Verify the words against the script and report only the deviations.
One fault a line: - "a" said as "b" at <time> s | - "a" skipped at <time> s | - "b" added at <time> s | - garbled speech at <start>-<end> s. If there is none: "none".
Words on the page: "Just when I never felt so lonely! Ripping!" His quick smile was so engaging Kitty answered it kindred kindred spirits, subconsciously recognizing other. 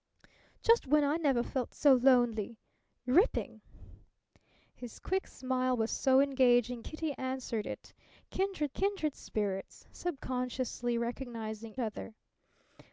none